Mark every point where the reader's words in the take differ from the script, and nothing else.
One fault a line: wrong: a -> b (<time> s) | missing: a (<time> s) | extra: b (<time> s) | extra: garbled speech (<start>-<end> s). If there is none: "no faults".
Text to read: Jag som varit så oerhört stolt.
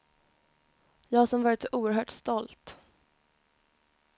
no faults